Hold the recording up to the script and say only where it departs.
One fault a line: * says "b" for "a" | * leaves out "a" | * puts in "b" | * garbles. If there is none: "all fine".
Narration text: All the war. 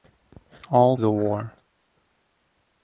all fine